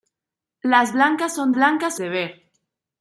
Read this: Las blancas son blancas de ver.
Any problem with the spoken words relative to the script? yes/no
no